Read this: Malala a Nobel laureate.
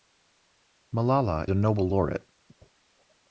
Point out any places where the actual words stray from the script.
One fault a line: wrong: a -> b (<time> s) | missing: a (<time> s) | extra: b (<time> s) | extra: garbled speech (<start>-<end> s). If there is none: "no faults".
no faults